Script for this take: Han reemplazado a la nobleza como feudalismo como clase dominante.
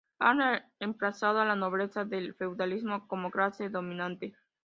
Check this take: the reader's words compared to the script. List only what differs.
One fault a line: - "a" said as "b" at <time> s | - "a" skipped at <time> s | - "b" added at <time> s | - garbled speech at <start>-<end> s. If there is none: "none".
- "como" said as "del" at 2.1 s